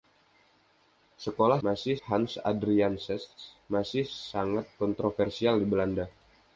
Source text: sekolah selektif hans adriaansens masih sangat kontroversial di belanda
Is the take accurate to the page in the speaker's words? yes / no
no